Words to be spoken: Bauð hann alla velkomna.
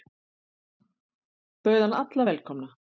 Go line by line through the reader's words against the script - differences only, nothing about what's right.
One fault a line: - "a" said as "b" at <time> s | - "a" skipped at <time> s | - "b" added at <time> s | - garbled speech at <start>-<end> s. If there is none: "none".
none